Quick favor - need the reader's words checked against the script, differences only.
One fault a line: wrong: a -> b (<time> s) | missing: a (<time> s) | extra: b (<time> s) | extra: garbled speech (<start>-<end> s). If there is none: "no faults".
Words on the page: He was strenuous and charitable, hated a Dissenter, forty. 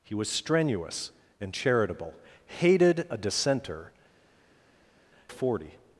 no faults